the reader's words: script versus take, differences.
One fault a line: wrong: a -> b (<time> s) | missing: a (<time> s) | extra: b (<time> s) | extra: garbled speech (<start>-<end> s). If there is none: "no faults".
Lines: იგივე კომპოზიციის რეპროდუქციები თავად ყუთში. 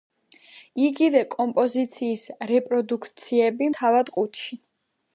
no faults